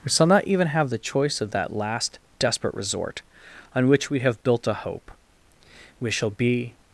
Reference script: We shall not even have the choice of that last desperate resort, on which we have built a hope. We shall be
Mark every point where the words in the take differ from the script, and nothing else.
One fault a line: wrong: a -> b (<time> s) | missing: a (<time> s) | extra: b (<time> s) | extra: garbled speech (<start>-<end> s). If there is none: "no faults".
no faults